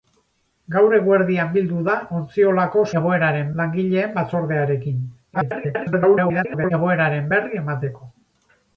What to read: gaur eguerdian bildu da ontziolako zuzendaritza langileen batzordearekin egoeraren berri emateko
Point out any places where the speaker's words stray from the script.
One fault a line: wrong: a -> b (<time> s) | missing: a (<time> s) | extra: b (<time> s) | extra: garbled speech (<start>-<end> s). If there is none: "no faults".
wrong: zuzendaritza -> egoeraren (3.0 s)
extra: garbled speech (5.3-6.7 s)